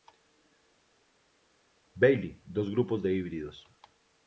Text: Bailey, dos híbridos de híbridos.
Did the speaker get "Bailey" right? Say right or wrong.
right